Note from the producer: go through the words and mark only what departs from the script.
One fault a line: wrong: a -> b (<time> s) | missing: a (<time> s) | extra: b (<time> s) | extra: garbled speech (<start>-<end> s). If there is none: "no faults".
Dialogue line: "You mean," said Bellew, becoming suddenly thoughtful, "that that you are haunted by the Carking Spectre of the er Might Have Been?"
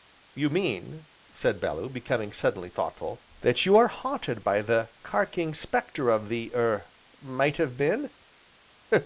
missing: that (3.7 s)